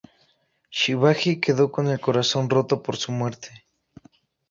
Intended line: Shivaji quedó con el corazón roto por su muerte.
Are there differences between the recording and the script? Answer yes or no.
no